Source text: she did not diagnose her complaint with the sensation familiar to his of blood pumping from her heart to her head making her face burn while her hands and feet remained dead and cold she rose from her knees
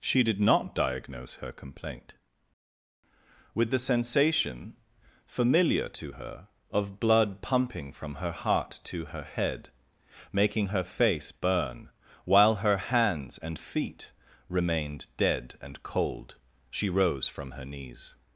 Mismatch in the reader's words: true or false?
true